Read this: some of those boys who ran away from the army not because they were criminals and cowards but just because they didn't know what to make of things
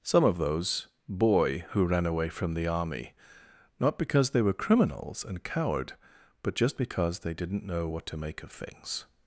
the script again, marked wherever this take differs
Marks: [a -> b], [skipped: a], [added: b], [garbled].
some of those [boys -> boy] who ran away from the army not because they were criminals and [cowards -> coward] but just because they didn't know what to make of things